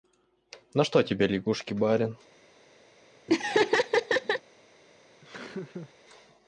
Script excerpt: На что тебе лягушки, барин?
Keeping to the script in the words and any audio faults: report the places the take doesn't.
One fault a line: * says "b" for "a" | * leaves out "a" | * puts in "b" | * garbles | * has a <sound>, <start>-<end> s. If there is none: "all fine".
* has a laugh, 3.3-4.4 s
* has a laugh, 5.2-5.9 s